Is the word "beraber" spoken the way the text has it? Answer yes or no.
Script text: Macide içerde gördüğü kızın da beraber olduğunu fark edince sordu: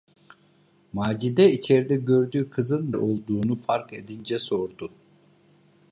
no